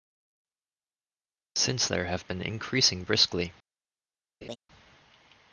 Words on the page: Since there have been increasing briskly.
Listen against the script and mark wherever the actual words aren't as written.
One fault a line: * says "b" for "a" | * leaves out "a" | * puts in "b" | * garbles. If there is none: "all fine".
all fine